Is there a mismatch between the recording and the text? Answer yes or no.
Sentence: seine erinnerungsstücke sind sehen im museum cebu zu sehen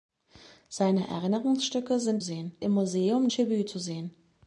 no